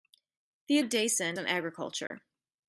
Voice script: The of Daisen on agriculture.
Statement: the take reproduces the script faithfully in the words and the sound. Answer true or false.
false